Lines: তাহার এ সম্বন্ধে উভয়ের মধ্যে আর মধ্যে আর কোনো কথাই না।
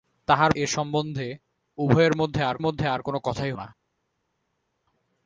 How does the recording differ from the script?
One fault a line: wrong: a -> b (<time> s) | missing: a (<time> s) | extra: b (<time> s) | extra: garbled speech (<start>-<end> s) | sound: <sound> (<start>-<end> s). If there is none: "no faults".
no faults